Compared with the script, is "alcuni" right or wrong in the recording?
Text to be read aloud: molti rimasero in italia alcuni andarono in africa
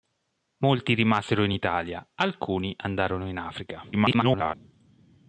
right